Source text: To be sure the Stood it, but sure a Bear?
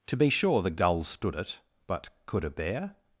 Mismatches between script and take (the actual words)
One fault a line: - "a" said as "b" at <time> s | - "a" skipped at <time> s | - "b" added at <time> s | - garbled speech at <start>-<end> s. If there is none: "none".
- "Gull" added at 0.7 s
- "sure" said as "could" at 2.2 s